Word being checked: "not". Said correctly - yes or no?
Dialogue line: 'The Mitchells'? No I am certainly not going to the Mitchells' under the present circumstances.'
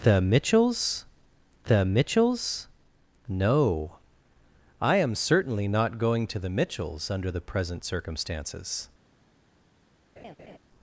yes